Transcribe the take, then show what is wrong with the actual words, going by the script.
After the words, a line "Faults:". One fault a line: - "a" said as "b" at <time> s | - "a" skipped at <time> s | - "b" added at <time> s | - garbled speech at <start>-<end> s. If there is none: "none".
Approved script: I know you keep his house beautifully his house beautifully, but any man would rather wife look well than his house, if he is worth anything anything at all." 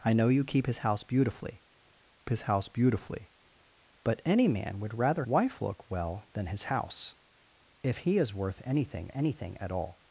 I know you keep his house beautifully his house beautifully, but any man would rather wife look well than his house, if he is worth anything anything at all."
Faults:
none